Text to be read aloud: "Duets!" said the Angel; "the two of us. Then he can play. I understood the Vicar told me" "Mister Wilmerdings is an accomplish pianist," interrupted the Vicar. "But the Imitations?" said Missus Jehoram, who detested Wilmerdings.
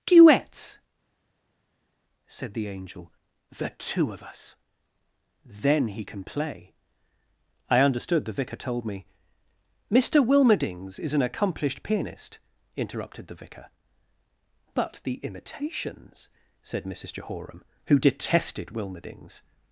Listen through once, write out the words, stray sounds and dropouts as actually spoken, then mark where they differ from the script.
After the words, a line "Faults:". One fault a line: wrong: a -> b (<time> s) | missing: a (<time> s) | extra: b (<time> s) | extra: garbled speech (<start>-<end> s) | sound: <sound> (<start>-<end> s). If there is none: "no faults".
"Duets!" said the Angel; "the two of us. Then he can play. I understood the Vicar told me" "Mister Wilmerdings is an accomplished pianist," interrupted the Vicar. "But the Imitations?" said Missus Jehoram, who detested Wilmerdings.
Faults:
wrong: accomplish -> accomplished (11.2 s)